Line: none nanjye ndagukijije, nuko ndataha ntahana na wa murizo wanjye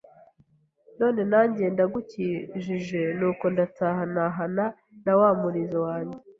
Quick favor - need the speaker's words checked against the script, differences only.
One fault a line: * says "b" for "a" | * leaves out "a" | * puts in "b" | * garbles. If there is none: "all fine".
all fine